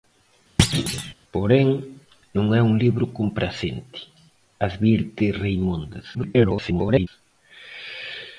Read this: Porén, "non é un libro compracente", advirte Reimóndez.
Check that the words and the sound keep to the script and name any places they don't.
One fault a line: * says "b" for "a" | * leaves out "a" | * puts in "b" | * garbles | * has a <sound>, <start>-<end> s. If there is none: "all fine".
* has a thud, 0.6-1.1 s
* garbles